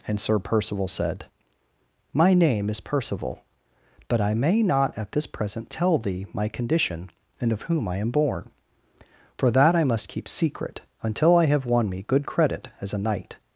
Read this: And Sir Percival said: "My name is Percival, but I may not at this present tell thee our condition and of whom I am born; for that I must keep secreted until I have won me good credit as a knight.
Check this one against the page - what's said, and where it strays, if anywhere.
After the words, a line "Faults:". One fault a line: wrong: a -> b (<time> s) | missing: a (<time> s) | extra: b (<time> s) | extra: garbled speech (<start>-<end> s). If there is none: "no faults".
And Sir Percival said: "My name is Percival, but I may not at this present tell thee my condition and of whom I am born; for that I must keep secret until I have won me good credit as a knight.
Faults:
wrong: our -> my (6.3 s)
wrong: secreted -> secret (10.3 s)